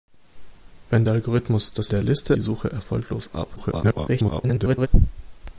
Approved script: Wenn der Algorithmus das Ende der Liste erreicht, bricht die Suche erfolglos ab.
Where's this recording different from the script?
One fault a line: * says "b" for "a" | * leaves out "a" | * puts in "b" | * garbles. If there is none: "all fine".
* leaves out "Ende"
* leaves out "erreicht bricht"
* garbles